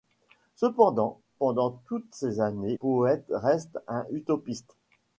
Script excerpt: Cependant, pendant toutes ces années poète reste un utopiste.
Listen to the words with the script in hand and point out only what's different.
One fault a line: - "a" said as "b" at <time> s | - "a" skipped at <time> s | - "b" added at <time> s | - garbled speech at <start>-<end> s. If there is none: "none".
none